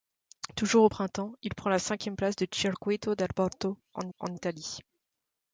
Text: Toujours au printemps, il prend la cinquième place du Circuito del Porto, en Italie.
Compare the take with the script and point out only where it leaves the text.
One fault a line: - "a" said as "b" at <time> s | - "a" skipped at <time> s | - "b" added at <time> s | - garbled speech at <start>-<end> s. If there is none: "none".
- "en" added at 4.2 s